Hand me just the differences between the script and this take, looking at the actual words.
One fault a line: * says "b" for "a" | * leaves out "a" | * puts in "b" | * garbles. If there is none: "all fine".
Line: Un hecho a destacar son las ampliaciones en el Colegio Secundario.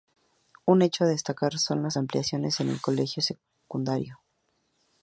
all fine